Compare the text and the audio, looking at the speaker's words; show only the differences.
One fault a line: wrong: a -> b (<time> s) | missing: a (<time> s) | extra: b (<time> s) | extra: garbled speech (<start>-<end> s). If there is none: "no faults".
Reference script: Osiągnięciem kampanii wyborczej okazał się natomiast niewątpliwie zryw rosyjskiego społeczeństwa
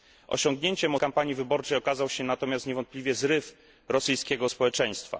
no faults